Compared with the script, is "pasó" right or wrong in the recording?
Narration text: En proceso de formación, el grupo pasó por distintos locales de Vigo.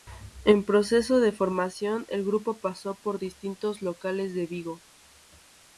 right